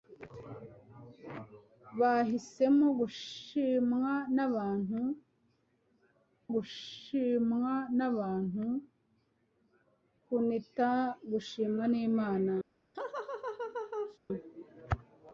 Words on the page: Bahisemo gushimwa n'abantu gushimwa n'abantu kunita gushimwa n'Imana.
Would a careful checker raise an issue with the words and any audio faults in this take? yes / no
yes